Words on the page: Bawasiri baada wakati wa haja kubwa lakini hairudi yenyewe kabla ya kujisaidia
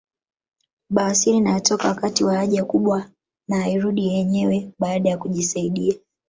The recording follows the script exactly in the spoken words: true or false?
false